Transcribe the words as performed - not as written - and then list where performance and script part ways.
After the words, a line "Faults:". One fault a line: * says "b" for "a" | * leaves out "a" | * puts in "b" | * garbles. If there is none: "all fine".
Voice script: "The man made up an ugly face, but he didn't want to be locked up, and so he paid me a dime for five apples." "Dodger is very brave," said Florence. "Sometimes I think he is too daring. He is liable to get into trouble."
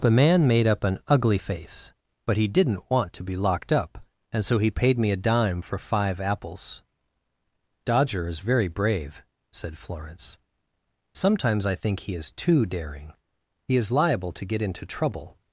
"The man made up an ugly face, but he didn't want to be locked up, and so he paid me a dime for five apples." "Dodger is very brave," said Florence. "Sometimes I think he is too daring. He is liable to get into trouble."
Faults:
all fine